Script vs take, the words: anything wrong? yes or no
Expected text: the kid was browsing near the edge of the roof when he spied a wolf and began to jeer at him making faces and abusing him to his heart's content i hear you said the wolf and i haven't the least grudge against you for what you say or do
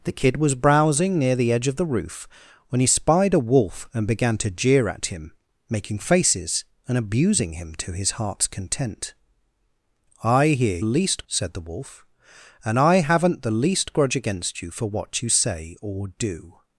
yes